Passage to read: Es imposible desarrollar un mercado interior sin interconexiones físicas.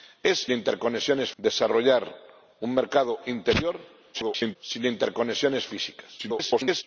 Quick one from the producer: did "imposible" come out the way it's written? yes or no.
no